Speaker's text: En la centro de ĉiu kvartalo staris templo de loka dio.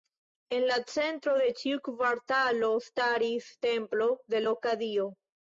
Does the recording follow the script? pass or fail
pass